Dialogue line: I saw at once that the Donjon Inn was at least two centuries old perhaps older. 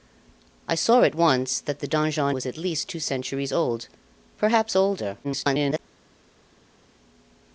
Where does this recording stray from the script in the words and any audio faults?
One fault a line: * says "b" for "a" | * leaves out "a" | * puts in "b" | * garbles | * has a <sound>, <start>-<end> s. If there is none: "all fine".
* leaves out "Inn"
* garbles